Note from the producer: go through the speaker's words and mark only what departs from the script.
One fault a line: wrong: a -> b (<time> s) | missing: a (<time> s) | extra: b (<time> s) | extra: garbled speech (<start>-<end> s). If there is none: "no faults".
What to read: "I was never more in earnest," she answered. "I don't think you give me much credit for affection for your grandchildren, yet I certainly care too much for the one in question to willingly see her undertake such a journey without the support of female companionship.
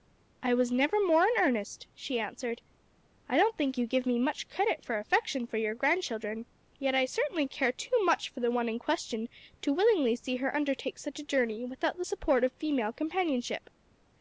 no faults